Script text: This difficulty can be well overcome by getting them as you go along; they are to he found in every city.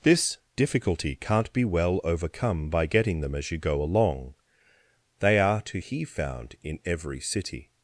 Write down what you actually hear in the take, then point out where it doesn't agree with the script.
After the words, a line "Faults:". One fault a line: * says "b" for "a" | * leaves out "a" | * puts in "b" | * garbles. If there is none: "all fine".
This difficulty can't be well overcome by getting them as you go along; they are to he found in every city.
Faults:
* says "can't" for "can"